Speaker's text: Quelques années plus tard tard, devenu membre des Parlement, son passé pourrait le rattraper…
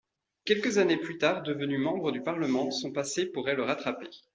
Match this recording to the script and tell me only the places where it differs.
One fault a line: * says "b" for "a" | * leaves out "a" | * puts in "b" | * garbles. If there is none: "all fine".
* leaves out "tard"
* says "du" for "des"